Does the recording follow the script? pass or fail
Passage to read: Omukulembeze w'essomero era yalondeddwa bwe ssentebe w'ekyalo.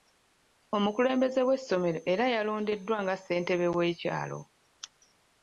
fail